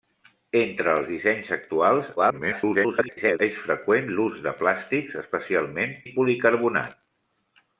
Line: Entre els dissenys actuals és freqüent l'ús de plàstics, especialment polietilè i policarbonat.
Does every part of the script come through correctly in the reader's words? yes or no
no